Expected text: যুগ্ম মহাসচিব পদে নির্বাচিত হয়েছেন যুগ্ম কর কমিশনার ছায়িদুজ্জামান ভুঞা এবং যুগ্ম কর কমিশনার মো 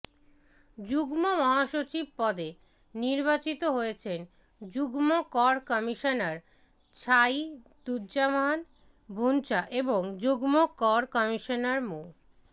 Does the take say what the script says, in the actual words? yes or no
yes